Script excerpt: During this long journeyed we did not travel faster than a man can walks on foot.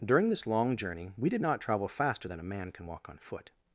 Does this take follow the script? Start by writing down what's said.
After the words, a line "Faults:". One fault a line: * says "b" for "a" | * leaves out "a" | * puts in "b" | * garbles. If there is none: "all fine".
During this long journey we did not travel faster than a man can walk on foot.
Faults:
* says "journey" for "journeyed"
* says "walk" for "walks"